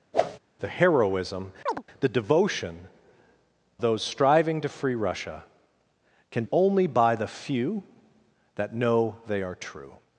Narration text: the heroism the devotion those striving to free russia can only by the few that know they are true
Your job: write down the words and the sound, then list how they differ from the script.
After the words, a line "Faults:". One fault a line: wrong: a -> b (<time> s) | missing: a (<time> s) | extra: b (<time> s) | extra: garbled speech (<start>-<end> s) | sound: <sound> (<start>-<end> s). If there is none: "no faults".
the heroism the devotion those striving to free russia can only by the few that know they are true
Faults:
sound: whoosh (0.1-0.4 s)
sound: chirp (1.7-1.8 s)